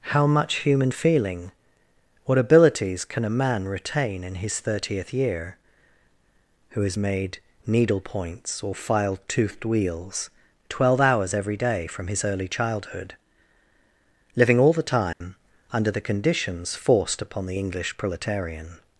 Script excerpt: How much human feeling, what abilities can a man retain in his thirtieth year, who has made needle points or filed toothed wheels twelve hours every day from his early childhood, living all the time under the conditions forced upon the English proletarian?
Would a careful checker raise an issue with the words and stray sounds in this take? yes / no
yes